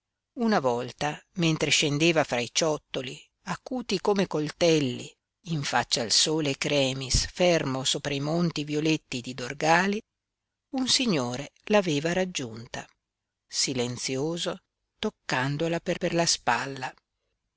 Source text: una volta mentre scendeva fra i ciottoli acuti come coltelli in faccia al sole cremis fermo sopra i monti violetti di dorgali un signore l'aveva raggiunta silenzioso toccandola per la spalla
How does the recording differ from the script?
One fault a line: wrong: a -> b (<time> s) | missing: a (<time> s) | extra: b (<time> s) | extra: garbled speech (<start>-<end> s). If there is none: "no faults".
extra: per (15.9 s)